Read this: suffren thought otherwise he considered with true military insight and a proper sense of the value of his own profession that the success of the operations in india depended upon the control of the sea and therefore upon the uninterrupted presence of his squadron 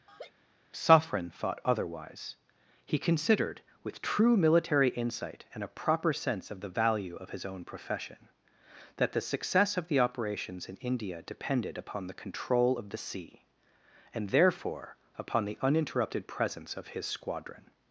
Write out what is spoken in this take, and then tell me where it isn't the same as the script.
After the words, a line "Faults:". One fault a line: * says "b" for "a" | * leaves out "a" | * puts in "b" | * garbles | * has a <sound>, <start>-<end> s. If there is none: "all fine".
suffren thought otherwise he considered with true military insight and a proper sense of the value of his own profession that the success of the operations in india depended upon the control of the sea and therefore upon the uninterrupted presence of his squadron
Faults:
* has a laugh, 0.1-0.3 s